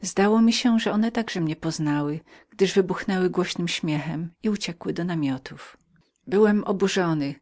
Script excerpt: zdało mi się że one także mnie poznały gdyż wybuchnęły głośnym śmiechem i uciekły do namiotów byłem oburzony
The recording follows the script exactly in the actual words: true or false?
true